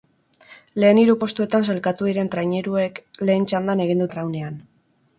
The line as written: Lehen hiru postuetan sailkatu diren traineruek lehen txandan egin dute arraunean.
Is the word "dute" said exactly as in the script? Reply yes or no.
no